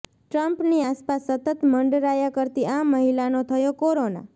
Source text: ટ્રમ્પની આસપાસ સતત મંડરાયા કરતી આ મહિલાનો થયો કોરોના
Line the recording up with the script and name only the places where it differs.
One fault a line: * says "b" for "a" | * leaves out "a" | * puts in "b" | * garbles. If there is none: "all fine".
all fine